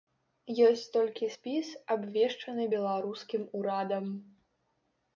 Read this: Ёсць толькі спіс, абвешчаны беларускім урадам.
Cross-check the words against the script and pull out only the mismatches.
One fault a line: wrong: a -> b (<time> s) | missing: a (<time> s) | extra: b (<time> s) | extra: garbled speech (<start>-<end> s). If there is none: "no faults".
no faults